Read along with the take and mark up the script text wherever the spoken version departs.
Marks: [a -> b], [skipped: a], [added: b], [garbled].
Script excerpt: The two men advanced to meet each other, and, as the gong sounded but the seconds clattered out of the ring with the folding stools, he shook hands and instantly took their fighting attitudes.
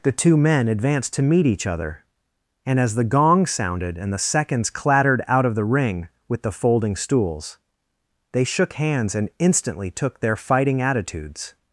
The two men advanced to meet each other, and, as the gong sounded [but -> and] the seconds clattered out of the ring with the folding stools, [he -> they] shook hands and instantly took their fighting attitudes.